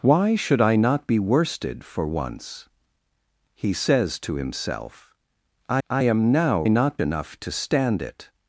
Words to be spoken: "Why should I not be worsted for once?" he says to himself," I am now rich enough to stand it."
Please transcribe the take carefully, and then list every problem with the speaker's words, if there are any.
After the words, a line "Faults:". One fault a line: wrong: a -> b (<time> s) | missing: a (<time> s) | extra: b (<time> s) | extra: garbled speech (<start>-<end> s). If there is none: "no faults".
"Why should I not be worsted for once?" he says to himself," I I am now not enough to stand it."
Faults:
extra: I (5.9 s)
wrong: rich -> not (6.7 s)